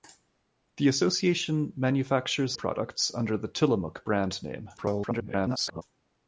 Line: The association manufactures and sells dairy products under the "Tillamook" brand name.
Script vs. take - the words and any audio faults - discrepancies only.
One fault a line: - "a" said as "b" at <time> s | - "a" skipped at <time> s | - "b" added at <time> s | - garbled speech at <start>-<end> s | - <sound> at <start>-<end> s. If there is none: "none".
- "and sells dairy" skipped at 2.6 s
- garbled speech at 4.8-5.8 s